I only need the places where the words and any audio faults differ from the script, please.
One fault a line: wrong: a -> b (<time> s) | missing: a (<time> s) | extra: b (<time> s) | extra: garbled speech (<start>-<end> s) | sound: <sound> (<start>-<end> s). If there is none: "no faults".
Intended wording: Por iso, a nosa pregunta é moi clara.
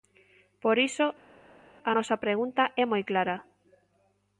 no faults